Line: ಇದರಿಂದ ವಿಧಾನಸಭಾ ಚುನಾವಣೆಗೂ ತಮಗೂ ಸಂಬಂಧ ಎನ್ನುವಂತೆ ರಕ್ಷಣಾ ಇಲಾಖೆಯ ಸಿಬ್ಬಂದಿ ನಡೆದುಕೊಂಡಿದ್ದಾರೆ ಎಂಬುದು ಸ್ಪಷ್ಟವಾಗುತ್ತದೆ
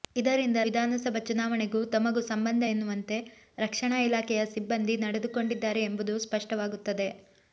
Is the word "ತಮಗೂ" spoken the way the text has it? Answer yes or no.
yes